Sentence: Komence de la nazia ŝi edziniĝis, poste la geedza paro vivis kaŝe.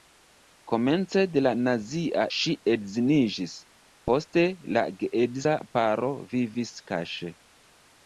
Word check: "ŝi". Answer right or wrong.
right